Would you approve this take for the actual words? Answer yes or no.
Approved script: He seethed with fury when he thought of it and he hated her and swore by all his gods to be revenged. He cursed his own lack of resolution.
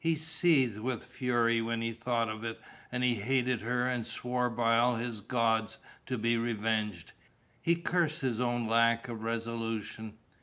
yes